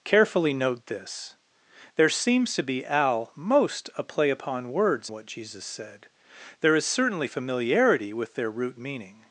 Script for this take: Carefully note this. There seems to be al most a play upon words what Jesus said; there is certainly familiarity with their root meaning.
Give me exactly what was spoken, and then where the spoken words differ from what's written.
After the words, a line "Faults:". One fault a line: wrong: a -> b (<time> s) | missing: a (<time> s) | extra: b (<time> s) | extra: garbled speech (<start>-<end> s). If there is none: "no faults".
Carefully note this. There seems to be al most a play upon words what Jesus said; there is certainly familiarity with their root meaning.
Faults:
no faults